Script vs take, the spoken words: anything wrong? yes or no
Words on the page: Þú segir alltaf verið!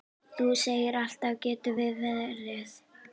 yes